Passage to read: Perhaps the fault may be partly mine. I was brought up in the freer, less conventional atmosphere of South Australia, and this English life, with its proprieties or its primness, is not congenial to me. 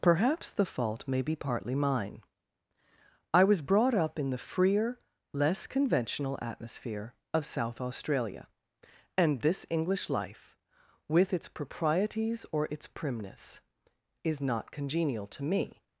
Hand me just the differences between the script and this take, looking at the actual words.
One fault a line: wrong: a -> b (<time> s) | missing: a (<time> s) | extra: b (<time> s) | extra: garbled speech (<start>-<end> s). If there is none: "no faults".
no faults